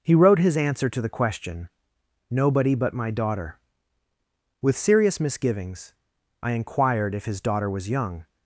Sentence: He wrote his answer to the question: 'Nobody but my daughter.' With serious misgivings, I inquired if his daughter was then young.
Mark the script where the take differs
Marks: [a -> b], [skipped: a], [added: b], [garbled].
He wrote his answer to the question: 'Nobody but my daughter.' With serious misgivings, I inquired if his daughter was [skipped: then] young.